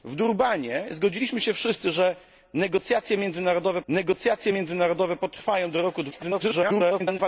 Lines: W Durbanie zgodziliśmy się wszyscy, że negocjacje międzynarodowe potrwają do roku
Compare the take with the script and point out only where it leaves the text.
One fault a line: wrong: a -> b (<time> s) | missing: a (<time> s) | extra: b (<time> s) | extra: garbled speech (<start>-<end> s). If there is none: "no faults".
extra: negocjacje międzynarodowe (3.9 s)
extra: garbled speech (6.1-7.2 s)